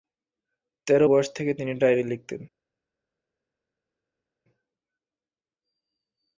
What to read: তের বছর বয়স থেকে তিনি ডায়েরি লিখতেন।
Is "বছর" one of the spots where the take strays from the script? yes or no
yes